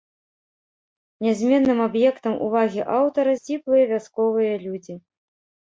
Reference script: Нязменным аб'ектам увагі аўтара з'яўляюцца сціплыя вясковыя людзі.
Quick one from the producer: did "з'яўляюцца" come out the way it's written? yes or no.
no